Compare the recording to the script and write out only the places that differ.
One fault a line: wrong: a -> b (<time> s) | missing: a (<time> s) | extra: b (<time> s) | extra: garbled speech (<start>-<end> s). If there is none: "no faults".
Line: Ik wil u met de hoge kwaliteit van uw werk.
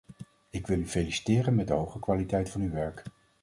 extra: feliciteren (0.9 s)